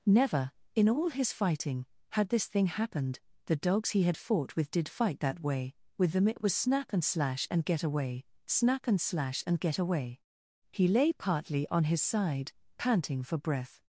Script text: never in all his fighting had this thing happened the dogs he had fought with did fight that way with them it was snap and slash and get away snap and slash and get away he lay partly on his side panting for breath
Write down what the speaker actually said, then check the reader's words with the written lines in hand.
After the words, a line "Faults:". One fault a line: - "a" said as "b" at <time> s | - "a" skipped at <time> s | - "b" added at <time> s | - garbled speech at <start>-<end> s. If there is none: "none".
never in all his fighting had this thing happened the dogs he had fought with did fight that way with them it was snap and slash and get away snap and slash and get away he lay partly on his side panting for breath
Faults:
none